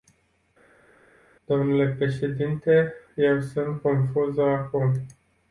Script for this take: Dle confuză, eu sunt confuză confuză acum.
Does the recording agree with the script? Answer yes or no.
no